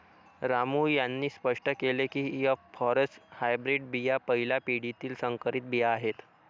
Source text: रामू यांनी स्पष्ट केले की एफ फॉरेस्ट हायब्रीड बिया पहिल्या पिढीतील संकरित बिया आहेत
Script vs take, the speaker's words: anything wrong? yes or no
no